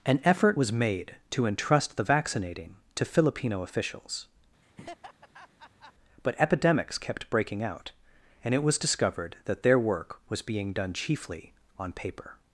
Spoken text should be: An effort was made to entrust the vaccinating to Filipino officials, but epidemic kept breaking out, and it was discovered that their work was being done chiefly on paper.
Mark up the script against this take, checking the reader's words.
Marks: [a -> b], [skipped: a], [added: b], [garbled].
An effort was made to entrust the vaccinating to Filipino officials, but [epidemic -> epidemics] kept breaking out, and it was discovered that their work was being done chiefly on paper.